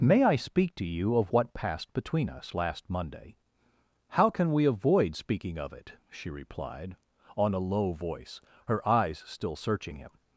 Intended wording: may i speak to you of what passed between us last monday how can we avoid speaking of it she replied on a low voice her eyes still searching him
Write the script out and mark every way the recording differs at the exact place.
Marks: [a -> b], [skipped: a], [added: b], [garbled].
may i speak to you of what passed between us last monday how can we avoid speaking of it she replied on a low voice her eyes still searching him